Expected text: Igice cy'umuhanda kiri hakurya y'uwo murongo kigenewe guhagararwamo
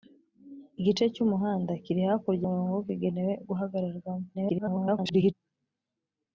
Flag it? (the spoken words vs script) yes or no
yes